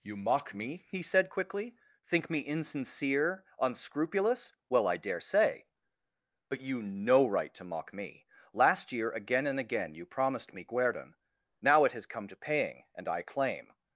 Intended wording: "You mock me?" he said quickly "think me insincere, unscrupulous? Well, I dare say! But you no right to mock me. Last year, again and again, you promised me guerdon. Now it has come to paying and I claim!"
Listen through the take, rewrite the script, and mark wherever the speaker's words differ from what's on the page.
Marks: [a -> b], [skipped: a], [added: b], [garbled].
"You mock me?" he said quickly "think me insincere, unscrupulous? Well, I dare say! But you no right to mock me. Last year, again and again, you promised me guerdon. Now it has come to paying and I claim!"